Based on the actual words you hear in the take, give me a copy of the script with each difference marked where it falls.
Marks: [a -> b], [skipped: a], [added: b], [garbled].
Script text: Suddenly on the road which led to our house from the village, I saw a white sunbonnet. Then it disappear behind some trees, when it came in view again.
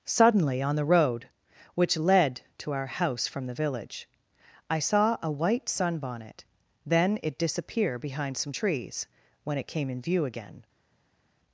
Suddenly on the road which led to our house from the village, I saw a white sunbonnet. Then it disappear behind some trees, when it came in view again.